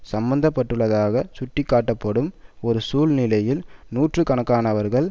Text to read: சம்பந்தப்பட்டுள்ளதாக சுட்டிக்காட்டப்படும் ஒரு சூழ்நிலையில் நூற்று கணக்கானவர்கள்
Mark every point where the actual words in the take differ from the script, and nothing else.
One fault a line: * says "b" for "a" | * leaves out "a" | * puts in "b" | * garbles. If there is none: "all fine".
all fine